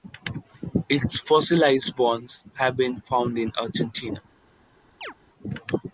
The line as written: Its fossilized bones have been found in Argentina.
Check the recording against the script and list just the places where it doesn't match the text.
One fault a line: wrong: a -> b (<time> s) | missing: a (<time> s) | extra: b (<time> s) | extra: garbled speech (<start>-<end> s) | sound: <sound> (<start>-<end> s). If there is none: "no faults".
sound: chirp (5.0-5.1 s)